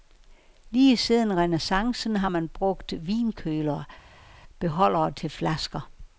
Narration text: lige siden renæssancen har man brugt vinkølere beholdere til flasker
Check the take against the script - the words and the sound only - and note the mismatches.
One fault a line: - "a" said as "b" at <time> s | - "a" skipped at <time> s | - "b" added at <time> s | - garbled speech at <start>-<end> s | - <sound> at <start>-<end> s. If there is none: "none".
none